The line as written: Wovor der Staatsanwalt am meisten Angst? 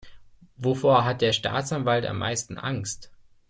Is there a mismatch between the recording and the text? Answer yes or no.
yes